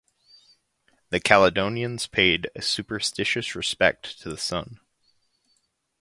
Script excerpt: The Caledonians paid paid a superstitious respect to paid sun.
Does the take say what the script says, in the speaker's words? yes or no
no